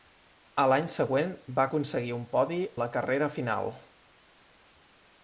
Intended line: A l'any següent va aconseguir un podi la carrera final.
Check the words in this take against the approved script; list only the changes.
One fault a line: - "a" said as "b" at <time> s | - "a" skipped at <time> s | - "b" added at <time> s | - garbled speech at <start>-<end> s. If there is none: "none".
none